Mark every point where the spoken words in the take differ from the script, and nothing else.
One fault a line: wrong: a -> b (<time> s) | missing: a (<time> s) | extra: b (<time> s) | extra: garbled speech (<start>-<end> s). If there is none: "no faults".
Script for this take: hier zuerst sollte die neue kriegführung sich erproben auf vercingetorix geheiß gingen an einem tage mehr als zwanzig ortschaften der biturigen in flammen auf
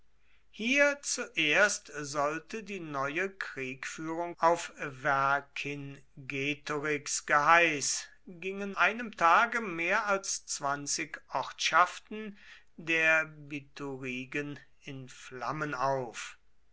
missing: sich erproben (4.3 s)
missing: an (8.8 s)